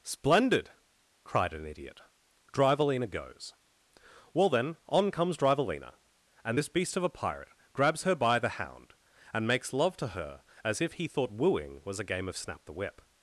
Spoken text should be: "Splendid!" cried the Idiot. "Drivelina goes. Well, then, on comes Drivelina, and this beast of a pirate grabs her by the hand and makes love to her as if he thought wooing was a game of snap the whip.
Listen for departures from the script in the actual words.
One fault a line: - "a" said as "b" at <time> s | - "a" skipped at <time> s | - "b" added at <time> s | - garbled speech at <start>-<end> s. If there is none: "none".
- "the" said as "an" at 1.5 s
- "hand" said as "hound" at 8.6 s